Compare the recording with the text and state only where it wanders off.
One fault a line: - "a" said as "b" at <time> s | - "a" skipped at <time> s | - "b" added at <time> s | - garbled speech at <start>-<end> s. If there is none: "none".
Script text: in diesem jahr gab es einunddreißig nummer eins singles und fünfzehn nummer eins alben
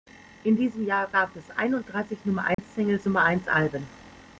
- "und fünfzehn" skipped at 3.1 s